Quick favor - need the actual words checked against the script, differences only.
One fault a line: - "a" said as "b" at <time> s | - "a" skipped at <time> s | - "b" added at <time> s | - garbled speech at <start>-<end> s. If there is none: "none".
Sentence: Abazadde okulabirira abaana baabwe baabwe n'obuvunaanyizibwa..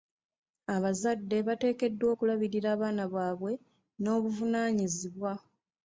- "bateekeddwa" added at 1.5 s
- "baabwe" skipped at 3.5 s